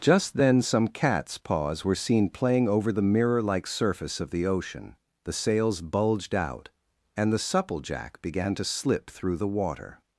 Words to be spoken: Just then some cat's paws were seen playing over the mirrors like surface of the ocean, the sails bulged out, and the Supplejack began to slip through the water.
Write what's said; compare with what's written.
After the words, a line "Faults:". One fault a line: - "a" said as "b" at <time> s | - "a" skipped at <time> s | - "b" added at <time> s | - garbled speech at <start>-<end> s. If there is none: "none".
Just then some cat's paws were seen playing over the mirror like surface of the ocean, the sails bulged out, and the Supplejack began to slip through the water.
Faults:
- "mirrors" said as "mirror" at 3.0 s